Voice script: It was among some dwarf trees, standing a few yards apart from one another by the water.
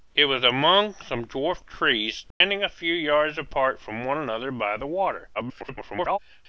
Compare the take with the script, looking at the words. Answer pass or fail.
fail